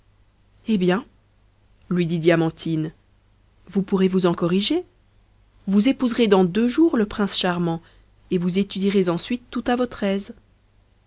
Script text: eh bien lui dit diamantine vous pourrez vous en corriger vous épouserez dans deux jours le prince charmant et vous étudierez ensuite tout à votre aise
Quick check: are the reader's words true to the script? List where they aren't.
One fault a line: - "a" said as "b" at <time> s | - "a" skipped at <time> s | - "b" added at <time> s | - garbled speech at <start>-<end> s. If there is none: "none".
none